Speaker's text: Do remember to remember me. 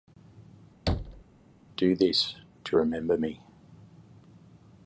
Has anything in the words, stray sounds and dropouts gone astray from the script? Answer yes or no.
yes